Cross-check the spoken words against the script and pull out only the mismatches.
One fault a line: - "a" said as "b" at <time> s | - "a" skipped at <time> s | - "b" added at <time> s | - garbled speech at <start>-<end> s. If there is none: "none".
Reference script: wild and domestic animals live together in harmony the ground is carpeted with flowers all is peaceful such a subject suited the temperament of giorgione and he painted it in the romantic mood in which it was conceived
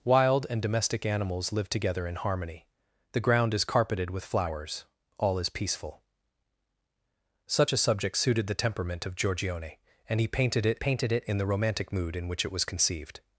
- "painted it" added at 10.8 s